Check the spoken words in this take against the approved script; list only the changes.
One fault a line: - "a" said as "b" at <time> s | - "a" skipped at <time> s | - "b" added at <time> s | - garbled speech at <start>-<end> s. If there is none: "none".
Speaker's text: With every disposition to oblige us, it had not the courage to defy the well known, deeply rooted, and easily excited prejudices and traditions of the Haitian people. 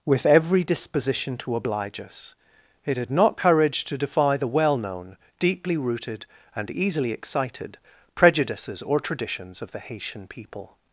- "the" skipped at 3.4 s
- "and" said as "or" at 8.8 s